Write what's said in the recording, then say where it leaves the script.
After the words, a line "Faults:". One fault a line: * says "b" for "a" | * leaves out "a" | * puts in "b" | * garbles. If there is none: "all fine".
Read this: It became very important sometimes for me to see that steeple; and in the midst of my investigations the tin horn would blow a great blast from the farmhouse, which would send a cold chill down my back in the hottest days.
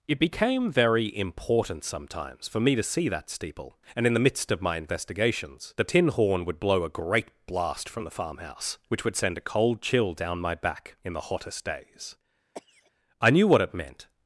It became very important sometimes for me to see that steeple; and in the midst of my investigations the tin horn would blow a great blast from the farmhouse, which would send a cold chill down my back in the hottest days. I knew what it meant
Faults:
* puts in "I knew what it meant"